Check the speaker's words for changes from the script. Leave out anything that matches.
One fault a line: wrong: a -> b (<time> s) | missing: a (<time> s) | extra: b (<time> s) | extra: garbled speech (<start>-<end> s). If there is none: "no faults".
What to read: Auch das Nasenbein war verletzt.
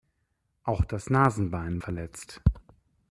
missing: war (1.8 s)